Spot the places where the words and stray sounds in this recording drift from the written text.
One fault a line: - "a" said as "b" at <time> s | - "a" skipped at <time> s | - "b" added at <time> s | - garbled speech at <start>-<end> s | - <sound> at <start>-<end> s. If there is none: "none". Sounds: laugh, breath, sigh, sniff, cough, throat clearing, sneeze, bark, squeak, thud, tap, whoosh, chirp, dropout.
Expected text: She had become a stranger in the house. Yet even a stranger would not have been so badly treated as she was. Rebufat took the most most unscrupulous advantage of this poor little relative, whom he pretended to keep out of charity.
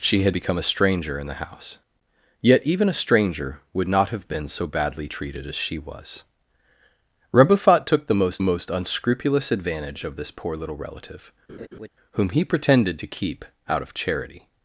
- laugh at 11.5-11.9 s